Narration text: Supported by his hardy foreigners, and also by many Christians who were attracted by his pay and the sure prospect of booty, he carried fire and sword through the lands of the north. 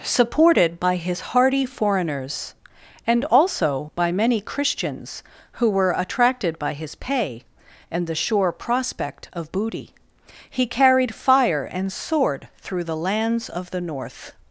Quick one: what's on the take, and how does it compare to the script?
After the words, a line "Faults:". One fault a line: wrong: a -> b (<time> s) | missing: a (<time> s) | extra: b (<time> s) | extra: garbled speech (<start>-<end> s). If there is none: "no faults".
Supported by his hardy foreigners, and also by many Christians who were attracted by his pay and the sure prospect of booty, he carried fire and sword through the lands of the north.
Faults:
no faults